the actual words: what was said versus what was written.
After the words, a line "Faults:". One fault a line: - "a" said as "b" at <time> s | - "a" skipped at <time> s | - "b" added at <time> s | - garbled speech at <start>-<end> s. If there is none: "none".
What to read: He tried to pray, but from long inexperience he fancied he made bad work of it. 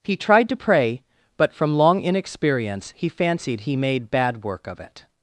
He tried to pray, but from long inexperience he fancied he made bad work of it.
Faults:
none